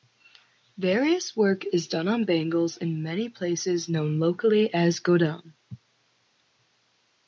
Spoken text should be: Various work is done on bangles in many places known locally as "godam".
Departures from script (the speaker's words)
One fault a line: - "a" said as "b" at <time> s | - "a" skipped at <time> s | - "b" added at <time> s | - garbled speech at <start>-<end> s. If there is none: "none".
none